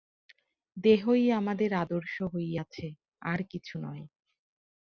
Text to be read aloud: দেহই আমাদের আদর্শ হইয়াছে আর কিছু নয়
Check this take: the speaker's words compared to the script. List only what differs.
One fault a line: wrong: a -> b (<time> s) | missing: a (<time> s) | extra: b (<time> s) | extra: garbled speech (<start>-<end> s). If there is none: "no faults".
no faults